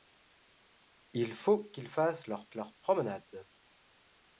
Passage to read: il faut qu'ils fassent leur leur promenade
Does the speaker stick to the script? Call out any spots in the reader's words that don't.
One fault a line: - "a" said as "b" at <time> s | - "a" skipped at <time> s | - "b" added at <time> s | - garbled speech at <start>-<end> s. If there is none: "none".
none